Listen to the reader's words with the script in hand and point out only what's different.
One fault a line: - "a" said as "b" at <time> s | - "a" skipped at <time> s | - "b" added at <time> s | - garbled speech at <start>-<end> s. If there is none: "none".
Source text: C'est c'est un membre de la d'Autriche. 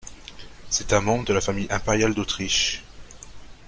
- "c'est" skipped at 0.9 s
- "famille impériale" added at 1.4 s